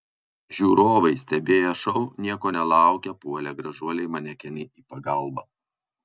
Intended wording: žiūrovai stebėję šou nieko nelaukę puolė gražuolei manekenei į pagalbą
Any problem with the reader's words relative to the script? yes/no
no